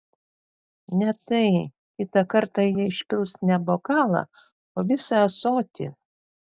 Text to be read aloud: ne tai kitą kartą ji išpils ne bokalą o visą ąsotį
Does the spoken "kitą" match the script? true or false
true